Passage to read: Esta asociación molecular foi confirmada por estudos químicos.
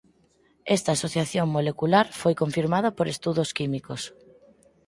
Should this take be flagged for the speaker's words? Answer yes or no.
no